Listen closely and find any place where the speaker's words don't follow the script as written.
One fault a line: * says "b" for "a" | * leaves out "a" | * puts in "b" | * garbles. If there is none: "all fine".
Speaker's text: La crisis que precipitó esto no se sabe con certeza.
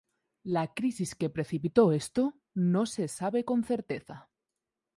all fine